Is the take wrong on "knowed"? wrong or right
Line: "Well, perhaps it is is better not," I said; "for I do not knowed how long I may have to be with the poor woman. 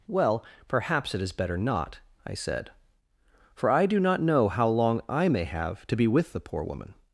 wrong